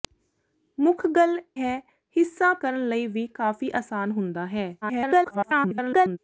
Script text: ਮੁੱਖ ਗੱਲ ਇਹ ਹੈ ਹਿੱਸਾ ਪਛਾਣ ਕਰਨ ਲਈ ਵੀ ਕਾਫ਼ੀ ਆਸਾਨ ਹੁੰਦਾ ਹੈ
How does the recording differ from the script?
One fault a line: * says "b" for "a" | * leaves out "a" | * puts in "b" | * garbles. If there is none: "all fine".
* leaves out "ਇਹ"
* leaves out "ਪਛਾਣ"
* garbles